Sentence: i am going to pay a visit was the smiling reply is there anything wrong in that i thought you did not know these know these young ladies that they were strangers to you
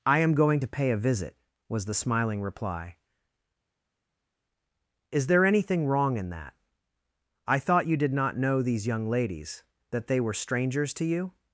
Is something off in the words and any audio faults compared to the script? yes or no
yes